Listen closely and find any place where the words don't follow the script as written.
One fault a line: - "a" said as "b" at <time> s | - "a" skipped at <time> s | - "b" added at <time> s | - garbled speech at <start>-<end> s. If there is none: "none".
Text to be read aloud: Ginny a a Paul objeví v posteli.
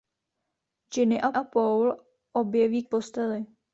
none